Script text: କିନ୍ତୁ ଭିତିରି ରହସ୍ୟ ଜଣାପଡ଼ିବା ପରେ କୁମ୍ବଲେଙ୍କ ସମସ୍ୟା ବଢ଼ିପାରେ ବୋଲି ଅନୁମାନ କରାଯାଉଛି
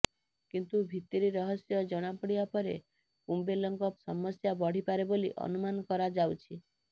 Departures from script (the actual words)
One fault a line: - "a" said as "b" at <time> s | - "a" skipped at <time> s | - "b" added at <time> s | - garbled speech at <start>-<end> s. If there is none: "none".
none